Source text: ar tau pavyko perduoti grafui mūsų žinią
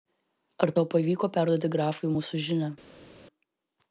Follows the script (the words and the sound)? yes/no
yes